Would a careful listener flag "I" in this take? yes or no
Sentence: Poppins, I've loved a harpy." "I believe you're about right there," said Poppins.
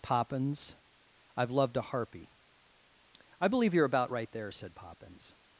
no